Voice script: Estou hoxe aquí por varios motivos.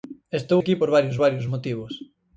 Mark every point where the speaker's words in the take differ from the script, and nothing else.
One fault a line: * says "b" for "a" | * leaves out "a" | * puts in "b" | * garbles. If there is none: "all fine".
* leaves out "hoxe"
* puts in "varios"